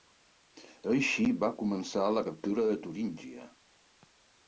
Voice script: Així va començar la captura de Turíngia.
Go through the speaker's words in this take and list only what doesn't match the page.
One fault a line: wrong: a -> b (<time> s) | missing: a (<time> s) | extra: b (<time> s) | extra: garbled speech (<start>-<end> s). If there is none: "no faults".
no faults